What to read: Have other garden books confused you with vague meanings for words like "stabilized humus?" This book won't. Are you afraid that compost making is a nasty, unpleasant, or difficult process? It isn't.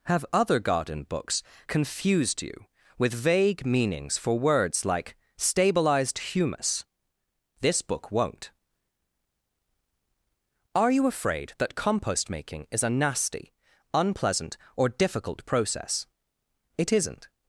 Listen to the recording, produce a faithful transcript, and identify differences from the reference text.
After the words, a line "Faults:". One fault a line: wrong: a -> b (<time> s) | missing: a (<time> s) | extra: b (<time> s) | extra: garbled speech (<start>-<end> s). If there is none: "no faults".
Have other garden books confused you with vague meanings for words like "stabilized humus?" This book won't. Are you afraid that compost making is a nasty, unpleasant, or difficult process? It isn't.
Faults:
no faults